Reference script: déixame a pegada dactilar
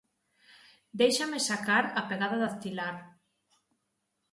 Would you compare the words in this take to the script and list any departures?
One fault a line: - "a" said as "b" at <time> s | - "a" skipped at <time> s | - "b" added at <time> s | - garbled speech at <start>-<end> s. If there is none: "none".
- "sacar" added at 1.5 s